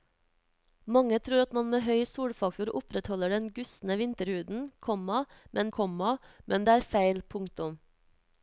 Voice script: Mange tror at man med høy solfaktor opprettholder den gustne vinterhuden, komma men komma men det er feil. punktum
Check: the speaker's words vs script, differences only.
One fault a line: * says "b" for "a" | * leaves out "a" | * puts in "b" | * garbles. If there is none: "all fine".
all fine